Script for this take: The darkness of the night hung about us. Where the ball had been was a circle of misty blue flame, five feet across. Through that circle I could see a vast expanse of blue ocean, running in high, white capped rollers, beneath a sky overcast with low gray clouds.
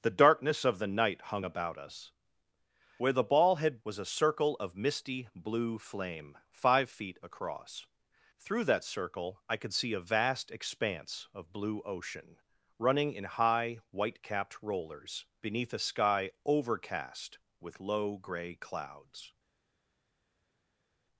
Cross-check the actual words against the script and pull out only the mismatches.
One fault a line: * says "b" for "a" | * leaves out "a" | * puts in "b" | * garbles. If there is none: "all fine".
* leaves out "been"